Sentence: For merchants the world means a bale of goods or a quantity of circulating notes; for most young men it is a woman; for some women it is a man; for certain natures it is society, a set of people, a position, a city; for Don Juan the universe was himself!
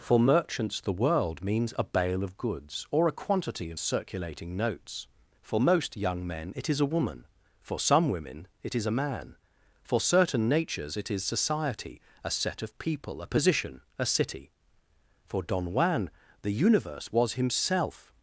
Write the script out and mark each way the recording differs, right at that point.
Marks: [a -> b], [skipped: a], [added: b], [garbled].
For merchants the world means a bale of goods or a quantity of circulating notes; for most young men it is a woman; for some women it is a man; for certain natures it is society, a set of people, a position, a city; for Don Juan the universe was himself!